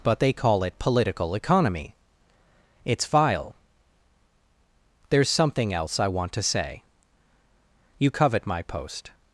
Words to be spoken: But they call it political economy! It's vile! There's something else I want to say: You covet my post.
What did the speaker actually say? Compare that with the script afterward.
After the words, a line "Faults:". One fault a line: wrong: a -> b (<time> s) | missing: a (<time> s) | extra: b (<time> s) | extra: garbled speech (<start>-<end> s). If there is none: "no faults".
But they call it political economy! It's vile! There's something else I want to say: You covet my post.
Faults:
no faults